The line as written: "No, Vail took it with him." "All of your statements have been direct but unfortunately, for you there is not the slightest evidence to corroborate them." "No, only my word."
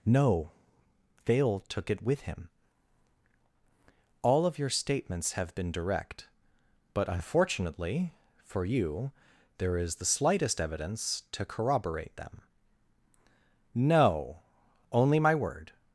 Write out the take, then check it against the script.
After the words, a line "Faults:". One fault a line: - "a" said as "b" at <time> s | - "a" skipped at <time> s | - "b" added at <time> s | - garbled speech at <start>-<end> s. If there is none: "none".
"No, Vail took it with him." "All of your statements have been direct but unfortunately, for you there is the slightest evidence to corroborate them." "No, only my word."
Faults:
- "not" skipped at 10.0 s